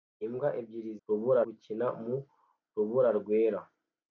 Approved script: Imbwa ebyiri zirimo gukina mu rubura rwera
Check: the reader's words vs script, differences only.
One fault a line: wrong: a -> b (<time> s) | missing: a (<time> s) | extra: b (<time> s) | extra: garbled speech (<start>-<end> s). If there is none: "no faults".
wrong: zirimo -> rubura (1.1 s)